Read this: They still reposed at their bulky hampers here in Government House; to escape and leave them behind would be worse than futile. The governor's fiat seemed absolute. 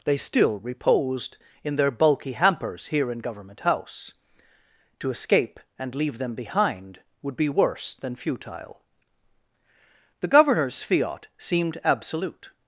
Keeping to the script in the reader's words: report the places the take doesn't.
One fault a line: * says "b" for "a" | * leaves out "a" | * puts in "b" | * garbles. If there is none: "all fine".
* says "in" for "at"